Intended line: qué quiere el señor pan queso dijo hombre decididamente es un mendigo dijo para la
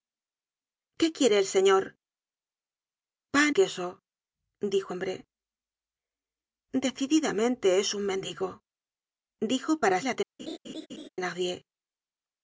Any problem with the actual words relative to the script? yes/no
no